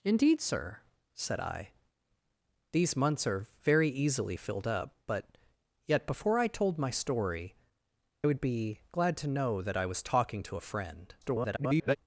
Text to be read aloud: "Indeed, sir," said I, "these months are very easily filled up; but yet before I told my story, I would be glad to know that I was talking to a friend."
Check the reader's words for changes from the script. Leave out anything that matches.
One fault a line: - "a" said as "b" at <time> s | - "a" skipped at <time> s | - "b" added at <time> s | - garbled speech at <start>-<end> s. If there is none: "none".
- "I" skipped at 7.5 s
- garbled speech at 11.2-12.0 s